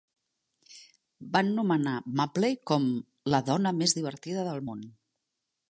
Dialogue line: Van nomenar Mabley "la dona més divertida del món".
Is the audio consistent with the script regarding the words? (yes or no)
no